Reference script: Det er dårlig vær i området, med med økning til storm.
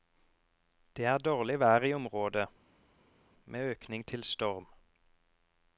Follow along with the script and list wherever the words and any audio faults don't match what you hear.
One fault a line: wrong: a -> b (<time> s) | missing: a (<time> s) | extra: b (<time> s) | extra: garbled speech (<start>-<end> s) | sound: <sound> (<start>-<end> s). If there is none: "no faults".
missing: med (3.7 s)